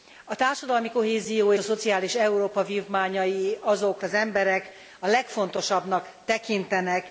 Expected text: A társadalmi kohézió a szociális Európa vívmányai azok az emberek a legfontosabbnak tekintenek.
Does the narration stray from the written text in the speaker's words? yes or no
no